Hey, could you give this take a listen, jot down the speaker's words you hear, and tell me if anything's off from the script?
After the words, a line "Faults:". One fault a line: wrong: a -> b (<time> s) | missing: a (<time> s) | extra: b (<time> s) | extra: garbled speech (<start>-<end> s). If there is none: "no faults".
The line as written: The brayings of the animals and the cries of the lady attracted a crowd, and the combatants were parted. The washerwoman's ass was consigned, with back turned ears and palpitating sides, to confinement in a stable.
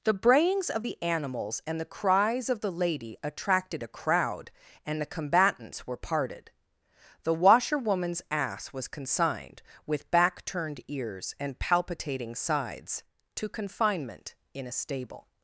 The brayings of the animals and the cries of the lady attracted a crowd, and the combatants were parted. The washerwoman's ass was consigned, with back turned ears and palpitating sides, to confinement in a stable.
Faults:
no faults